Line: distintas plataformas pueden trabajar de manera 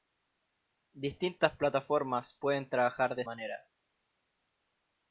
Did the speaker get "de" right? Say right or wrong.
right